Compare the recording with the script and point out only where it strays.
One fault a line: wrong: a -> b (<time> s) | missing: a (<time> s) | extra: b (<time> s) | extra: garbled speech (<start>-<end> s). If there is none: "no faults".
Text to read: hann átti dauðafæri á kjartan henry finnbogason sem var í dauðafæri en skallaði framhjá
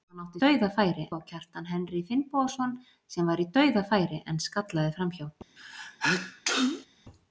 no faults